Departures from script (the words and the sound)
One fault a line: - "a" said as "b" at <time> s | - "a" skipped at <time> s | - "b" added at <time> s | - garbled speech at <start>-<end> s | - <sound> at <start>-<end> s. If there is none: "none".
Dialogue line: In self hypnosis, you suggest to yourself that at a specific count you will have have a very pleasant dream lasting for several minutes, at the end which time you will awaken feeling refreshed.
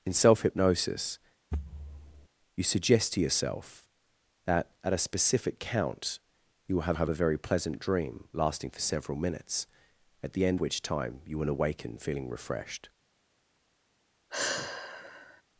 - thud at 1.5-2.3 s
- sigh at 14.3-15.4 s